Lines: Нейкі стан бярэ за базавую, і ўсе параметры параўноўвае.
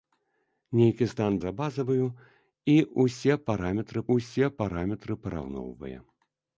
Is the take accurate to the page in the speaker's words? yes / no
no